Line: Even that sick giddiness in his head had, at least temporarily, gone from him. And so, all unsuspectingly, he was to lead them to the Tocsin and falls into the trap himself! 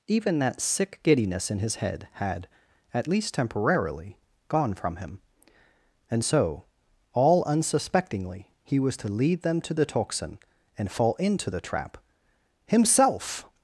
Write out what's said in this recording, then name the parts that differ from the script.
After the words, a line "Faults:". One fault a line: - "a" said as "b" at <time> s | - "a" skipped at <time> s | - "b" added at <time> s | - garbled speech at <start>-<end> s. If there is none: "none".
Even that sick giddiness in his head had, at least temporarily, gone from him. And so, all unsuspectingly, he was to lead them to the Tocsin and fall into the trap himself!
Faults:
- "falls" said as "fall" at 10.9 s